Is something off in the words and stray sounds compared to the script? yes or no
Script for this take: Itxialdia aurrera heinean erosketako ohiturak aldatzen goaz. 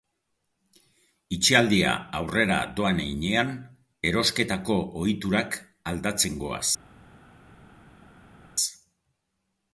yes